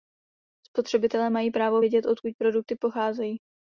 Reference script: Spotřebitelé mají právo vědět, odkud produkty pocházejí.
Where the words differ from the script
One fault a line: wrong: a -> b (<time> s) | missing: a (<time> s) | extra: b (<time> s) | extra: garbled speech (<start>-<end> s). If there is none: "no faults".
no faults